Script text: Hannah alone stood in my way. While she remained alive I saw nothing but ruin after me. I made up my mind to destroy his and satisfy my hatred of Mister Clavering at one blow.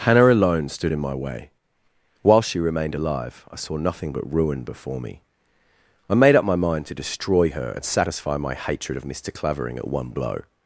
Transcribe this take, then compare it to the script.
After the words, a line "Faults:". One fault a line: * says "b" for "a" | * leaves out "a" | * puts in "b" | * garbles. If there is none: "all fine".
Hannah alone stood in my way. While she remained alive I saw nothing but ruin before me. I made up my mind to destroy her and satisfy my hatred of Mister Clavering at one blow.
Faults:
* says "before" for "after"
* says "her" for "his"